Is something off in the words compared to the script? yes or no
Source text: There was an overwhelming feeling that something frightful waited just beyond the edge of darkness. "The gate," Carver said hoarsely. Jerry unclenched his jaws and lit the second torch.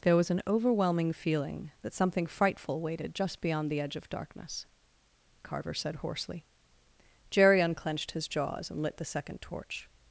yes